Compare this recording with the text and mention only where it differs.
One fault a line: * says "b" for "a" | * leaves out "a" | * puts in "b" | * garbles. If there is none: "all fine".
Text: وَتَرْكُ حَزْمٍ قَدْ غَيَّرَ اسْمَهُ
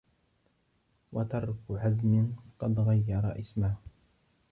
all fine